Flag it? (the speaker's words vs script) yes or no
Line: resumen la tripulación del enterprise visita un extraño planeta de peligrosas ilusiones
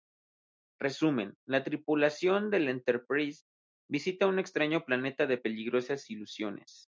no